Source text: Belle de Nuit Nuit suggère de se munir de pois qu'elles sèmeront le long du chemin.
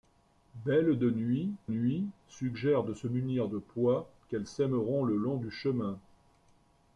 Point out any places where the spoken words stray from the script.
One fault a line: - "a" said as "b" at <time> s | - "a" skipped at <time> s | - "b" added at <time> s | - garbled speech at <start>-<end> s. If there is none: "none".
none